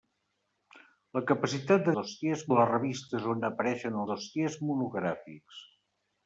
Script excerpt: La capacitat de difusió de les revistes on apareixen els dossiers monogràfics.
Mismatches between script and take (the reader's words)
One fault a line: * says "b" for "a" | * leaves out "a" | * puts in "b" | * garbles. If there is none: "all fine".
* says "dossiers" for "difusió"
* leaves out "els"